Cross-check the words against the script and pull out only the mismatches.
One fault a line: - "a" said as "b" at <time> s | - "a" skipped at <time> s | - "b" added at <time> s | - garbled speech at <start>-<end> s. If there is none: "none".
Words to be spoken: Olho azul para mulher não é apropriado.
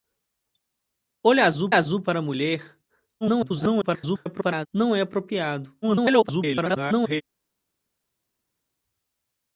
- "azul" added at 1.7 s
- garbled speech at 3.2-4.7 s
- garbled speech at 5.8-7.2 s